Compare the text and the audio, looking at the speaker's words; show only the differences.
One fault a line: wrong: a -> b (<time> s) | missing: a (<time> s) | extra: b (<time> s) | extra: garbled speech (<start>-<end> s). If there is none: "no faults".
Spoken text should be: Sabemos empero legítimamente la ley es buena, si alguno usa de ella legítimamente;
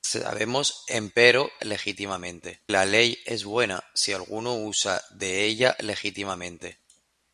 no faults